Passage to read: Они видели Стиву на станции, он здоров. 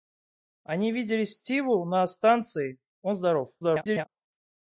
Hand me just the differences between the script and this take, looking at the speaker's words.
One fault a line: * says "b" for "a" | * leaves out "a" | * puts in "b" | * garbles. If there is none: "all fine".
* garbles